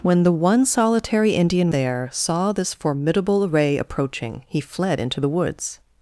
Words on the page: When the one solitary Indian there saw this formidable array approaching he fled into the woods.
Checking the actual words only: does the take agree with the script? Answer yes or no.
yes